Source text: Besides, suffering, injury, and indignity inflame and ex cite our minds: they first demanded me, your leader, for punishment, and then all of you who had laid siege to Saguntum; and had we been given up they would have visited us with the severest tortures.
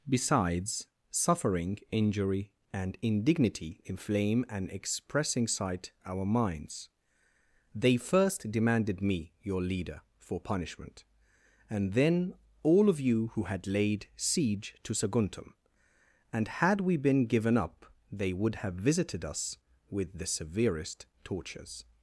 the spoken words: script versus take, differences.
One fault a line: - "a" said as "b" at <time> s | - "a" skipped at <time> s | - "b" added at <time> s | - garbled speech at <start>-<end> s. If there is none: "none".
- "ex cite" said as "expressing sight" at 4.7 s